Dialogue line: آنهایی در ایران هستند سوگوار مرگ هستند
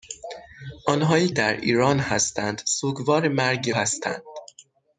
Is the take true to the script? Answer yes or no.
yes